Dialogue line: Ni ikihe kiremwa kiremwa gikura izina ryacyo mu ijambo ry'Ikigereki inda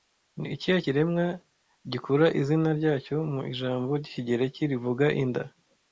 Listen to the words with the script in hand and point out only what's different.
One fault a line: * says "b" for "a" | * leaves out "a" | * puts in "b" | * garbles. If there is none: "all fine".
* leaves out "kiremwa"
* puts in "rivuga"